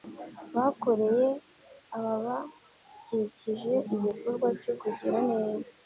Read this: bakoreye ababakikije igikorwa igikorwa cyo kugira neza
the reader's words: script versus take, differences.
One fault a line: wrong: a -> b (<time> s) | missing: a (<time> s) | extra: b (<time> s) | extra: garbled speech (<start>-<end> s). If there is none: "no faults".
missing: igikorwa (4.5 s)